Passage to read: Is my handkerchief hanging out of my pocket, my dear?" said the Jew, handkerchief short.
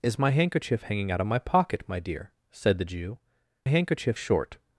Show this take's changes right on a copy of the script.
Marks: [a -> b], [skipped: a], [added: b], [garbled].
Is my handkerchief hanging out of my pocket, my dear?" said the Jew, handkerchief short.